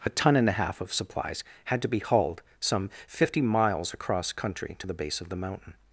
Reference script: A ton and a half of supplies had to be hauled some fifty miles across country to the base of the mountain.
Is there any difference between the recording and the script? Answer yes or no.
no